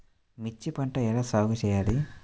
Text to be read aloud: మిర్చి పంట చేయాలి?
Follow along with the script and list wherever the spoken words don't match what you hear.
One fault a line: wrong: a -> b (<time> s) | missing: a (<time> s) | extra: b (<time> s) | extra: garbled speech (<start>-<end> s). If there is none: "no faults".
extra: ఎలా సాగు (1.1 s)